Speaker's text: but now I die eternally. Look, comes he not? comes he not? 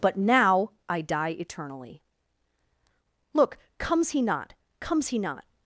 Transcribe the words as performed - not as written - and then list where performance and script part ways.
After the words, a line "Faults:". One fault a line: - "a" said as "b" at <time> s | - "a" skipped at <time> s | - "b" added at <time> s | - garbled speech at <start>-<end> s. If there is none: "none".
but now I die eternally. Look, comes he not? comes he not?
Faults:
none